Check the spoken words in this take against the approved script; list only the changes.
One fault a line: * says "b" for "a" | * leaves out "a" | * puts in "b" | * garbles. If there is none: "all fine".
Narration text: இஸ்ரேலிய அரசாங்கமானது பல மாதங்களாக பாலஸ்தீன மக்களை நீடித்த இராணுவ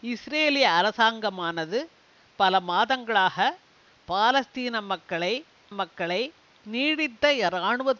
* puts in "மக்களை"